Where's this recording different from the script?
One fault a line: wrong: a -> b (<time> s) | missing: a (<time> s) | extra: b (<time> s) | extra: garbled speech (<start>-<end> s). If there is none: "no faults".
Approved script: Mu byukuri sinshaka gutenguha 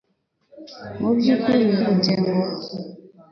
missing: sinshaka (1.6 s)